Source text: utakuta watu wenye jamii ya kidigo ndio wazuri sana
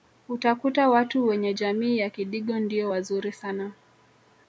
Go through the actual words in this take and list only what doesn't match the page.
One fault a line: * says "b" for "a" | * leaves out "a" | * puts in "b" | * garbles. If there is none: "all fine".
all fine